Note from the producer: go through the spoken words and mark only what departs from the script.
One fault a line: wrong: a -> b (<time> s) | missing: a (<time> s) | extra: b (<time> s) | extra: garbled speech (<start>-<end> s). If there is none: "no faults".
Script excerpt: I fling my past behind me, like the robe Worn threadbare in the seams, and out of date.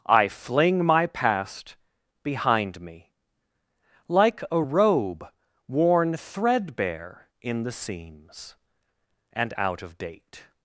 wrong: the -> a (4.5 s)